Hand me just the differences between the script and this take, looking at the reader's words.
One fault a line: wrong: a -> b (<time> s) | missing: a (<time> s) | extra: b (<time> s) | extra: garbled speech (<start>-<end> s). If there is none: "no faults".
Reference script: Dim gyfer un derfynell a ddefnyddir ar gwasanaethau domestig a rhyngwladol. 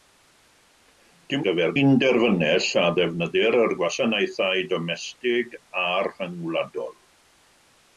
no faults